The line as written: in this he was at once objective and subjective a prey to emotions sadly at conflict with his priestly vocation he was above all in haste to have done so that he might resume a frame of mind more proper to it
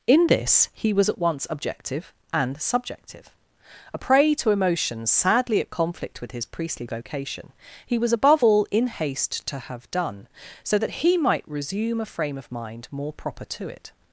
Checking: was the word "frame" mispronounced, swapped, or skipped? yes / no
no